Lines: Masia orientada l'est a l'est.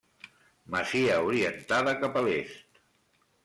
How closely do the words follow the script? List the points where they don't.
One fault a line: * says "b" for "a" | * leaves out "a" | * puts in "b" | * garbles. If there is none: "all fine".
* says "cap" for "l'est"